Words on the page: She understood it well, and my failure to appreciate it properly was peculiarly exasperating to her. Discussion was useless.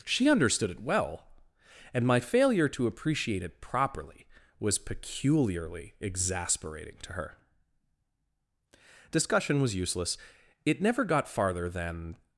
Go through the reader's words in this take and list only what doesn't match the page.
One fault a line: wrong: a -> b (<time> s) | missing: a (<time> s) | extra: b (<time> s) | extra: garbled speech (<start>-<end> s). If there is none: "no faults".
extra: It never got farther than (10.6 s)